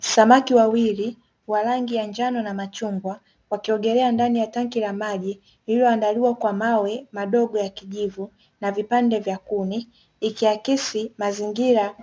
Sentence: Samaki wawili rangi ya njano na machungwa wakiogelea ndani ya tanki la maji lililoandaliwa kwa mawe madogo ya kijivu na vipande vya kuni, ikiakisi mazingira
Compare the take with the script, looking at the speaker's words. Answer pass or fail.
fail